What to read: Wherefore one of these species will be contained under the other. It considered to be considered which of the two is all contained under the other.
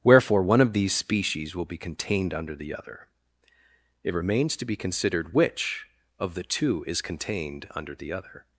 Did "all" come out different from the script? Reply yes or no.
yes